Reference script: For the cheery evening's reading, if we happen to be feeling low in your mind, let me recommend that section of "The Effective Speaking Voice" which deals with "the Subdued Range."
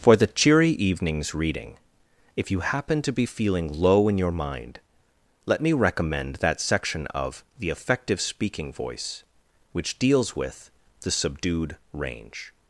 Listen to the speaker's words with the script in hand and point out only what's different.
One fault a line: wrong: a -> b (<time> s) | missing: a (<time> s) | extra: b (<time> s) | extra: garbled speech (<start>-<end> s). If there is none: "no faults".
wrong: we -> you (2.5 s)